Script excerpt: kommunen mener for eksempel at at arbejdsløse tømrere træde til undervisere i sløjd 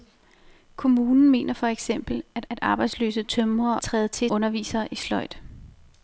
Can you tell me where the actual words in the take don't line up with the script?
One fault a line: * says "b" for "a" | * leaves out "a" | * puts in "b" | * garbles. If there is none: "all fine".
all fine